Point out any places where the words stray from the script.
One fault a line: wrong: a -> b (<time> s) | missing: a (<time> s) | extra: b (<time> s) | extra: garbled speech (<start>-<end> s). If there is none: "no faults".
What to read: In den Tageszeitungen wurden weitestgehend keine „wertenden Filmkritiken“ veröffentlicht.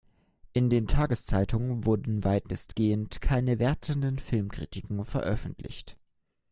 no faults